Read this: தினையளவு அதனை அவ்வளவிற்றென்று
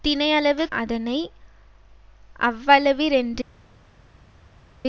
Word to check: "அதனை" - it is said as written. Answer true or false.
true